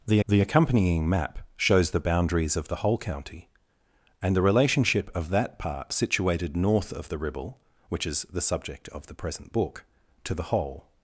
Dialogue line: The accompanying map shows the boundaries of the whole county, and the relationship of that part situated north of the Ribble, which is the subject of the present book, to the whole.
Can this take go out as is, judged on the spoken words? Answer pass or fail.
fail